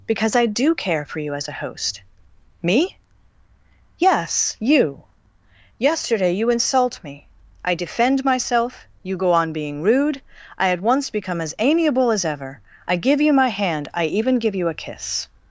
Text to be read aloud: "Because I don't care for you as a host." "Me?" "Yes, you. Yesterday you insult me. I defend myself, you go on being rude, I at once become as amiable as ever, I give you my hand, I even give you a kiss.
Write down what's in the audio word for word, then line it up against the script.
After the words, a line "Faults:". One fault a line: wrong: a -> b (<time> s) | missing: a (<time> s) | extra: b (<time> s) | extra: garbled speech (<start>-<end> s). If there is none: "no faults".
"Because I do care for you as a host." "Me?" "Yes, you. Yesterday you insult me. I defend myself, you go on being rude, I at once become as amiable as ever, I give you my hand, I even give you a kiss.
Faults:
wrong: don't -> do (0.5 s)